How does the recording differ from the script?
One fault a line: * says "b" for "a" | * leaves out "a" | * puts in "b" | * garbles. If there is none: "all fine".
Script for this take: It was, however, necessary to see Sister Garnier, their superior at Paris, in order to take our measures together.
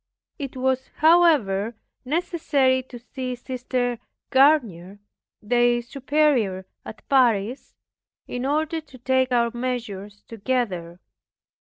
all fine